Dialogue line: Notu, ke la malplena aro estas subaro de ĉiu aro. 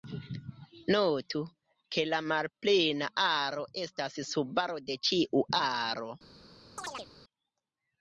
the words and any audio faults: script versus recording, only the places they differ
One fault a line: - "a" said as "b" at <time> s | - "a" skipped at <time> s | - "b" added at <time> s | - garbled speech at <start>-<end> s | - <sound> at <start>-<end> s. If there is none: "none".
- chirp at 6.8-7.1 s